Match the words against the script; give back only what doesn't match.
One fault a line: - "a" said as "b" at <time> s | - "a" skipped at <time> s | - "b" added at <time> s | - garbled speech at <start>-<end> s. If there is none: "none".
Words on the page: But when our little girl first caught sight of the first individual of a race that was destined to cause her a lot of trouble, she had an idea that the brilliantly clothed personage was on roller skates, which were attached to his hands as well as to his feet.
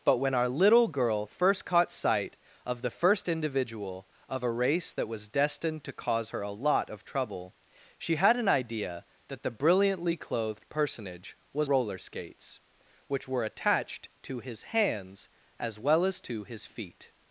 - "on" skipped at 11.7 s